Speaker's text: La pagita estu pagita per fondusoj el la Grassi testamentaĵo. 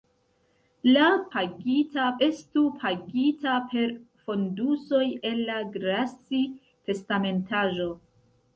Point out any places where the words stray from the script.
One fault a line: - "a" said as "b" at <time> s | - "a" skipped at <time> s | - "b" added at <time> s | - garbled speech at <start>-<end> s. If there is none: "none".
none